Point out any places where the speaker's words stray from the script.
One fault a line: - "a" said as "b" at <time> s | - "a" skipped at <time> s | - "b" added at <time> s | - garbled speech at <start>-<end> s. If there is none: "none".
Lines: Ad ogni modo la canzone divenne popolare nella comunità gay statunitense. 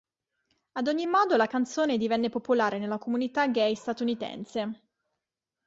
none